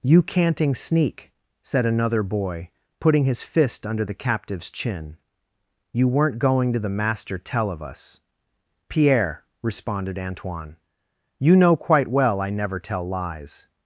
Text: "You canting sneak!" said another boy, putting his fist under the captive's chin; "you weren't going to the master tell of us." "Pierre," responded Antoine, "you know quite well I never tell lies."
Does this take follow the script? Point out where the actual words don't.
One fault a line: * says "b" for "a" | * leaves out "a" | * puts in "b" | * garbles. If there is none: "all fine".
all fine